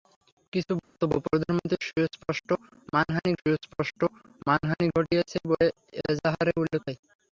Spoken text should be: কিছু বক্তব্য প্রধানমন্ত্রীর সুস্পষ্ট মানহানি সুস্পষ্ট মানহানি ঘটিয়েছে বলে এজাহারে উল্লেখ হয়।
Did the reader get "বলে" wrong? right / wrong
right